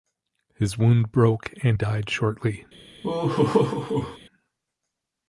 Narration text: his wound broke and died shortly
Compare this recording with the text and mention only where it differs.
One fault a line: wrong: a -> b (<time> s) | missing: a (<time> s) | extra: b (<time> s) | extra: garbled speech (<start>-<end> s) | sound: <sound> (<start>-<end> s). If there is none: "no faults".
sound: laugh (3.0-4.2 s)